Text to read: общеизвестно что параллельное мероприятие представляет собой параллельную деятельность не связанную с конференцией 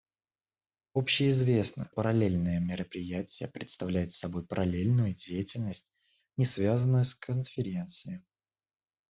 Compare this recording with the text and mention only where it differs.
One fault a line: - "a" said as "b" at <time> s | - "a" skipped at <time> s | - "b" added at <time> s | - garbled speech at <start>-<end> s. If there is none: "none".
- "что" skipped at 1.9 s